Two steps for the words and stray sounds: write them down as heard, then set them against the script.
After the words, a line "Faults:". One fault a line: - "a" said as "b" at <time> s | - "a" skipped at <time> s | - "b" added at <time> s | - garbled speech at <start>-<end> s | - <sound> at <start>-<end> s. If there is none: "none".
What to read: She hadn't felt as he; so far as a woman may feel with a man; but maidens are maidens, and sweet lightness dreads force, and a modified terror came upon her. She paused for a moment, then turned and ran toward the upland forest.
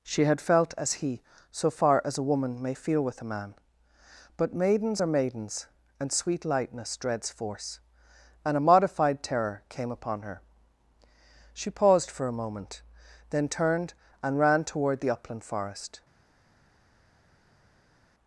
She had felt as he; so far as a woman may feel with a man; but maidens are maidens, and sweet lightness dreads force, and a modified terror came upon her. She paused for a moment, then turned and ran toward the upland forest.
Faults:
- "hadn't" said as "had" at 0.2 s